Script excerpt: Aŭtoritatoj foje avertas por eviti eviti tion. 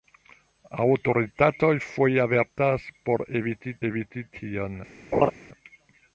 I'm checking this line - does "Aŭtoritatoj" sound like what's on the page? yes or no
yes